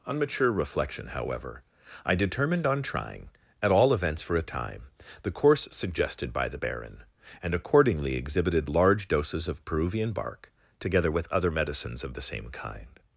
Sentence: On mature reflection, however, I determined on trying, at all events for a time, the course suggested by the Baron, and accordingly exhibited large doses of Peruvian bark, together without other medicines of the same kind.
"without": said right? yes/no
no